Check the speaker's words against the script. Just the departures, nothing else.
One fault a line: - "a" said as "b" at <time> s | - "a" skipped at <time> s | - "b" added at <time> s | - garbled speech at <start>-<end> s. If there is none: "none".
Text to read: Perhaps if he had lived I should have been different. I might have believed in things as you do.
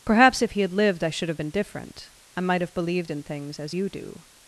none